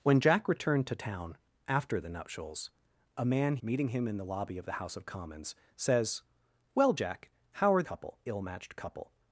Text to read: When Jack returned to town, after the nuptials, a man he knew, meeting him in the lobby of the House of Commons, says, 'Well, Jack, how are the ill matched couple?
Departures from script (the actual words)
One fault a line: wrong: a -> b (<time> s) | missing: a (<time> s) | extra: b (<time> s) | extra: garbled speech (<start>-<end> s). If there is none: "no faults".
missing: he knew (3.6 s)
wrong: the -> couple (7.8 s)